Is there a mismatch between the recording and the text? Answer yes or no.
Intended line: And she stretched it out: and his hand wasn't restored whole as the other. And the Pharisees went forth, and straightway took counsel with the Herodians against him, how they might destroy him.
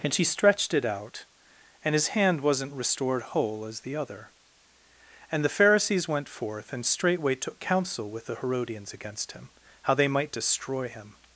no